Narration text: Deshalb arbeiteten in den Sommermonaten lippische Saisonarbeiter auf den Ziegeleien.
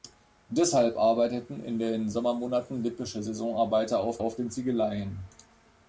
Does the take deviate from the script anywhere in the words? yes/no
yes